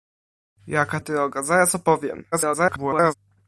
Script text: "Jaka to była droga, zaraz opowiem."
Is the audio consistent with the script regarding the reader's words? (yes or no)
no